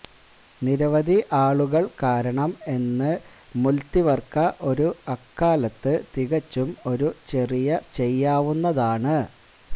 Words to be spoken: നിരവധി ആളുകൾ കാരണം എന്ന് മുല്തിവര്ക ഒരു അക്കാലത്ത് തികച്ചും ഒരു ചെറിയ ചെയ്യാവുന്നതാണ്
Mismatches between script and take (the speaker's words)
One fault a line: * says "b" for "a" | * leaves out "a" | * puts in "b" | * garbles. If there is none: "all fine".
all fine